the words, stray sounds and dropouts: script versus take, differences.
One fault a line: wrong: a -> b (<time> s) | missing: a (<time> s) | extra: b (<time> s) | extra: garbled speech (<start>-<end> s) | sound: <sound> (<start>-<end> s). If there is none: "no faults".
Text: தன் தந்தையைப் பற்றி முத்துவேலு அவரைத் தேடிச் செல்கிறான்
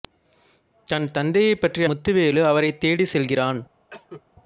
sound: cough (3.9-4.2 s)